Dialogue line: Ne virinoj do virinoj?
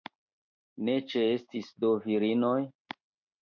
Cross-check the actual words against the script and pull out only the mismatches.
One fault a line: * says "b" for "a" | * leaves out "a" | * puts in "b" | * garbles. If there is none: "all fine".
* says "ĉeestis" for "virinoj"